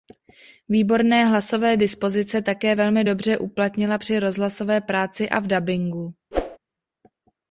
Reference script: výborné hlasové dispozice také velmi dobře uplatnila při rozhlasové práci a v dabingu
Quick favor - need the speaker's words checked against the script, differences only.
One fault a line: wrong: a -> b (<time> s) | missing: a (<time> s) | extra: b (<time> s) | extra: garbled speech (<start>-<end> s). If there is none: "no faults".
no faults